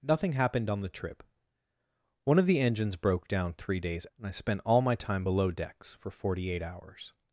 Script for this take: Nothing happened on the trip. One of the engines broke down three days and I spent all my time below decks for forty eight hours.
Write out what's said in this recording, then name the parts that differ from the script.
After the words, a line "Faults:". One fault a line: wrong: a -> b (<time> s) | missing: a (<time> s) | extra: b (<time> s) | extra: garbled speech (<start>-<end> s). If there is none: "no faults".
Nothing happened on the trip. One of the engines broke down three days and I spent all my time below decks for forty eight hours.
Faults:
no faults